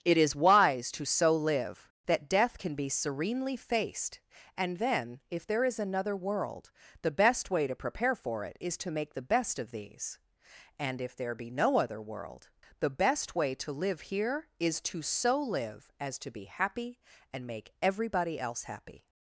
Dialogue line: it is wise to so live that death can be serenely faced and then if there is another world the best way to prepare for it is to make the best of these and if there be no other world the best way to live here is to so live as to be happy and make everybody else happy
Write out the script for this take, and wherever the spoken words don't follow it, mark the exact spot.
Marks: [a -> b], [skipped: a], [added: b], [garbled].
it is wise to so live that death can be serenely faced and then if there is another world the best way to prepare for it is to make the best of these and if there be no other world the best way to live here is to so live as to be happy and make everybody else happy